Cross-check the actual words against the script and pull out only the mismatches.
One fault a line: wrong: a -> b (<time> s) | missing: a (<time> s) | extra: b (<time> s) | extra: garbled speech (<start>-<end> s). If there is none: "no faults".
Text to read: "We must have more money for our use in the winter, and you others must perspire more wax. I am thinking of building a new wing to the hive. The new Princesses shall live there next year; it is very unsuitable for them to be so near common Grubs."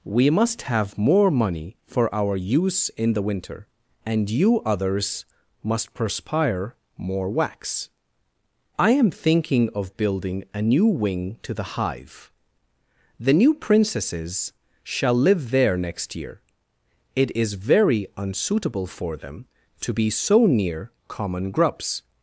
no faults